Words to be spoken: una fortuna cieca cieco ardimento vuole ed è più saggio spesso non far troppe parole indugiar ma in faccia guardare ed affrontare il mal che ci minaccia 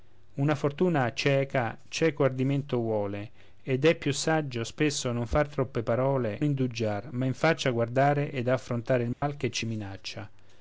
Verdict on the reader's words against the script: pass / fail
pass